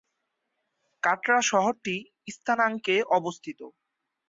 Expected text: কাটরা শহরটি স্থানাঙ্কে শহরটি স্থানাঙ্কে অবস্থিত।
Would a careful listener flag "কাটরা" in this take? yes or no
no